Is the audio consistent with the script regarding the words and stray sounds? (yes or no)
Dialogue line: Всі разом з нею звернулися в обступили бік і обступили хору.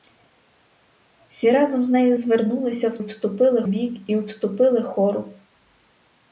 yes